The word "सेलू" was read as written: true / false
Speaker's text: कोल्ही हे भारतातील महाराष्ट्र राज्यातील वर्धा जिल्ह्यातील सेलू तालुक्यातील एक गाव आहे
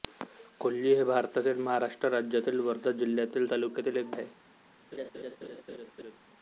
false